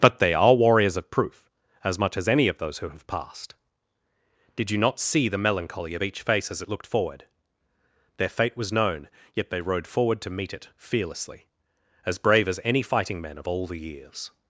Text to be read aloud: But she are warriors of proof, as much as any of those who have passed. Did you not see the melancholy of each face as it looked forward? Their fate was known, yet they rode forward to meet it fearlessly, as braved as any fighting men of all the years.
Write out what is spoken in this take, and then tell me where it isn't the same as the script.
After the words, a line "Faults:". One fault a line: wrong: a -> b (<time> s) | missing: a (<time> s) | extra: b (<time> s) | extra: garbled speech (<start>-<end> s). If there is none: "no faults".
But they are warriors of proof, as much as any of those who have passed. Did you not see the melancholy of each face as it looked forward? Their fate was known, yet they rode forward to meet it fearlessly, as brave as any fighting men of all the years.
Faults:
wrong: she -> they (0.2 s)
wrong: braved -> brave (12.2 s)